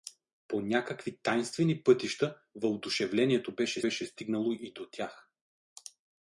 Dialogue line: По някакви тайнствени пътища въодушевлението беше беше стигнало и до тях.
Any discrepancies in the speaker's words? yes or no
no